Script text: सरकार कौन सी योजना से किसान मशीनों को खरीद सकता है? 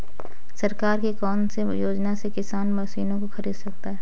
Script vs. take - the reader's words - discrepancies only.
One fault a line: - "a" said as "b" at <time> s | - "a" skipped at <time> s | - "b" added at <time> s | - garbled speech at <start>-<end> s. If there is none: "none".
- "की" added at 1.0 s